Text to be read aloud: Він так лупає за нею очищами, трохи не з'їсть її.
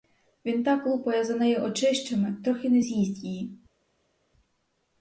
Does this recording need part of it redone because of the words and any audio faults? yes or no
no